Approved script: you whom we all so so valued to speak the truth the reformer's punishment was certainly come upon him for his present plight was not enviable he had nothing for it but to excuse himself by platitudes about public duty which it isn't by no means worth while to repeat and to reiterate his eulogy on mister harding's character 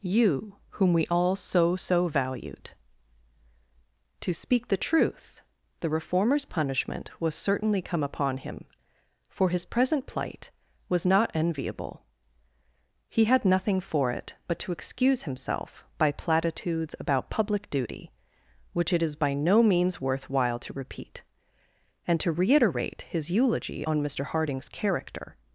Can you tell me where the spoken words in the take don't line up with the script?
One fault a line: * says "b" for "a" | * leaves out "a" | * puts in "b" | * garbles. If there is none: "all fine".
* says "is" for "isn't"